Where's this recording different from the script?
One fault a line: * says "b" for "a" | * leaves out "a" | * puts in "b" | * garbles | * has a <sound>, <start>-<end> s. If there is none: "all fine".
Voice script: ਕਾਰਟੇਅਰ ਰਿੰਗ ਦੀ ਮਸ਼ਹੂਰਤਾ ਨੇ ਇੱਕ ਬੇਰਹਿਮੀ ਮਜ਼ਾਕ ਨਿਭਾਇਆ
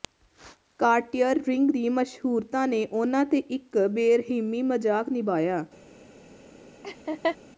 * puts in "ਉਨ੍ਹਾਂ ਤੇ"
* has a laugh, 6.8-7.4 s